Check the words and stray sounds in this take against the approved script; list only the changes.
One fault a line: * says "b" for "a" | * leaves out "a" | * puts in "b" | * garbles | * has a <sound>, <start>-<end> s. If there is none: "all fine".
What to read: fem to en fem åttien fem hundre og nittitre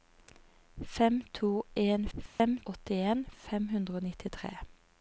* has a dropout, 2.3-2.4 s